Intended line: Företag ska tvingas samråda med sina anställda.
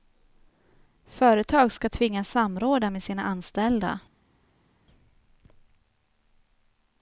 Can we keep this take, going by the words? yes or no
yes